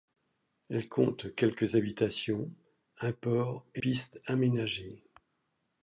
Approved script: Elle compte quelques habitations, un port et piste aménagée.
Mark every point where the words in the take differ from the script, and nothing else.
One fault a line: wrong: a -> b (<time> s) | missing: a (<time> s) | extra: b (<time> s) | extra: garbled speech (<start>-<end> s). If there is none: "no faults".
no faults